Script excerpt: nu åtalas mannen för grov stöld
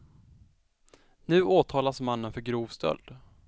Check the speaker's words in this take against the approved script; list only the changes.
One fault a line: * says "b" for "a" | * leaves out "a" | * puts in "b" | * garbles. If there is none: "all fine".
all fine